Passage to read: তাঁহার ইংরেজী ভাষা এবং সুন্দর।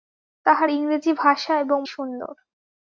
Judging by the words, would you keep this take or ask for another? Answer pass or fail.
pass